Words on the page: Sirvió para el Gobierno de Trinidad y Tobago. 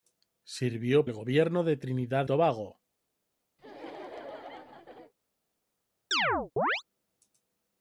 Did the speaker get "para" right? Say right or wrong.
wrong